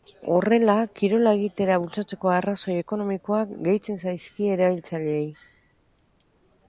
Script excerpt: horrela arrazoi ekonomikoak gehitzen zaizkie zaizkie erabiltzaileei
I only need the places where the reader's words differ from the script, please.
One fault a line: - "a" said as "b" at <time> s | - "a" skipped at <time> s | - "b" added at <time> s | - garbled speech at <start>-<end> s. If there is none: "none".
- "kirola egitera bultzatzeko" added at 1.0 s
- "zaizkie" skipped at 4.5 s